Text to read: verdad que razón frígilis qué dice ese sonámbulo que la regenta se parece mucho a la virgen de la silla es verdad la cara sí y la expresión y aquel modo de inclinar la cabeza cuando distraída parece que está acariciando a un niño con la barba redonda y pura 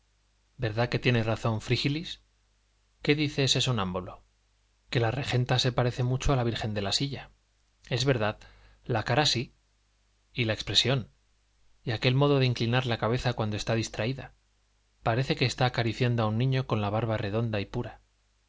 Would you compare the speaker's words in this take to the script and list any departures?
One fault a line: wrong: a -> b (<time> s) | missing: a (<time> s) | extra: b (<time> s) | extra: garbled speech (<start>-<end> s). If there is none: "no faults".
extra: tiene (1.0 s)
extra: está (13.6 s)